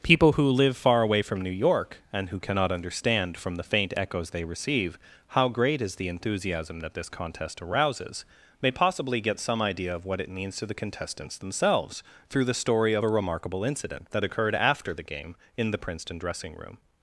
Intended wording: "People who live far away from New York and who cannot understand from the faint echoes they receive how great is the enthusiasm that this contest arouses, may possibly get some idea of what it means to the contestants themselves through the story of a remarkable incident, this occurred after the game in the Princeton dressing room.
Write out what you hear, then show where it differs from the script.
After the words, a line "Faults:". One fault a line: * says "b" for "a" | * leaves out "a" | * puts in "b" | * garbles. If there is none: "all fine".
"People who live far away from New York and who cannot understand from the faint echoes they receive how great is the enthusiasm that this contest arouses, may possibly get some idea of what it means to the contestants themselves through the story of a remarkable incident, that occurred after the game in the Princeton dressing room.
Faults:
* says "that" for "this"